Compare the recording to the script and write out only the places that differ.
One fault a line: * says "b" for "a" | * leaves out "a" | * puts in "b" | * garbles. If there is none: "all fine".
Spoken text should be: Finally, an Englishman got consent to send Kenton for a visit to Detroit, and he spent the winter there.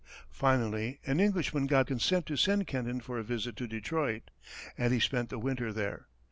all fine